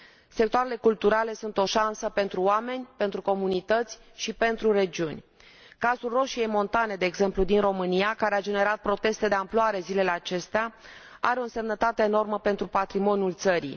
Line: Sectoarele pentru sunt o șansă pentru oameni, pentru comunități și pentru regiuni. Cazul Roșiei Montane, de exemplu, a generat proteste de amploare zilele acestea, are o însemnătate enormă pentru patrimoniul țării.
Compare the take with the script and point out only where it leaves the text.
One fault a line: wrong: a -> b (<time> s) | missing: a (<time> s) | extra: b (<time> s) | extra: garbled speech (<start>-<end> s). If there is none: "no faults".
wrong: pentru -> culturale (0.8 s)
extra: din România care (7.4 s)